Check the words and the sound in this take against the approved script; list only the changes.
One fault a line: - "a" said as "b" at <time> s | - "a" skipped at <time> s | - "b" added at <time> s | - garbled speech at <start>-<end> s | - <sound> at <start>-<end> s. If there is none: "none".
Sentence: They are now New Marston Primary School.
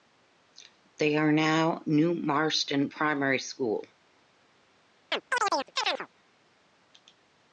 - chirp at 5.1-6.1 s